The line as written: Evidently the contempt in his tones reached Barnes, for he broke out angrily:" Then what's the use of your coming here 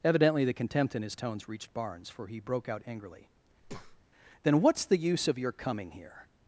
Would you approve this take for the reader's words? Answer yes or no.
yes